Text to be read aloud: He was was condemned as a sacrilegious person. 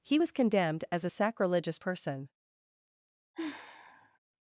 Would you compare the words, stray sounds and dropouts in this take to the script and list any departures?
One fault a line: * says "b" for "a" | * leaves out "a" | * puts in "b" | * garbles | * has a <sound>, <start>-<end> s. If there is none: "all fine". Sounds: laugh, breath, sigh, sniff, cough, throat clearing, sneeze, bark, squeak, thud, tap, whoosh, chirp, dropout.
* leaves out "was"
* has a sigh, 3.3-4.2 s